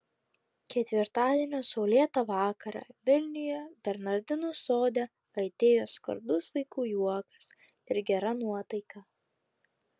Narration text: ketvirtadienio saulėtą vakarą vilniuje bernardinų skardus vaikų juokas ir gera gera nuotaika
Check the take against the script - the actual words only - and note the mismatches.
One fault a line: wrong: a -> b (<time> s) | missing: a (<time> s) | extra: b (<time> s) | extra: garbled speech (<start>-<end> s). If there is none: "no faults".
extra: sode aidėjo (4.6 s)
missing: gera (8.4 s)